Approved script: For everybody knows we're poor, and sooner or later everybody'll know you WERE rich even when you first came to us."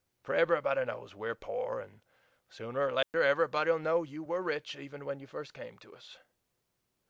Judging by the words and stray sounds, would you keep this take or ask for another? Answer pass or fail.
fail